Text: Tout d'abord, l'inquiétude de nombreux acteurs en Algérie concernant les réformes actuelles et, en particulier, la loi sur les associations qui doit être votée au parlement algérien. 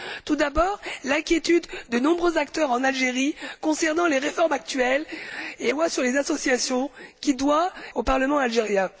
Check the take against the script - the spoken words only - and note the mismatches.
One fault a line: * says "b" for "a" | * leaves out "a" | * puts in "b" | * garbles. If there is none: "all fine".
* leaves out "en particulier la"
* leaves out "être votée"